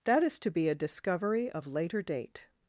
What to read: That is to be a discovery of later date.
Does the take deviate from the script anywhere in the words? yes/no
no